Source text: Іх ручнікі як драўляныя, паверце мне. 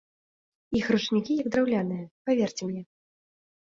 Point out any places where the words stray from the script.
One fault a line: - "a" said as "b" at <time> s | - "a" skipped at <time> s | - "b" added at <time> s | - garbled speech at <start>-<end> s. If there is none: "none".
none